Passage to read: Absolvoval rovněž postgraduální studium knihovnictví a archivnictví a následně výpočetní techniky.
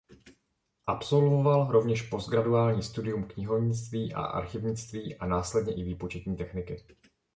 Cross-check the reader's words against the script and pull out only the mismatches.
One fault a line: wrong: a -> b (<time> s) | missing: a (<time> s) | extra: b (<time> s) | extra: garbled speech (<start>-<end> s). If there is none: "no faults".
extra: i (5.7 s)